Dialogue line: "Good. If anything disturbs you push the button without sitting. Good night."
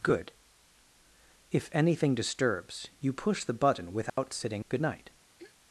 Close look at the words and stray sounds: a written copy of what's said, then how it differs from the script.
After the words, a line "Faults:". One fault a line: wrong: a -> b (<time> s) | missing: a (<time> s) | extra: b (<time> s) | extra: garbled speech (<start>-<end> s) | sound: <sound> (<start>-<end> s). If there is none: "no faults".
"Good. If anything disturbs you push the button without sitting. Good night."
Faults:
sound: dropout (4.1-4.2 s)
sound: throat clearing (5.4-5.6 s)